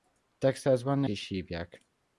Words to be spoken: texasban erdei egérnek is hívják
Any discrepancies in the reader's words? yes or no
yes